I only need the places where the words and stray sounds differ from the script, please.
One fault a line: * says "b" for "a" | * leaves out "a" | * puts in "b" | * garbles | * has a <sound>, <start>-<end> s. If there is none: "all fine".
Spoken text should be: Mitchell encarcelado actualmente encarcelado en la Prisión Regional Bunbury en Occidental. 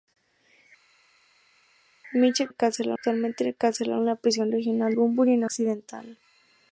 all fine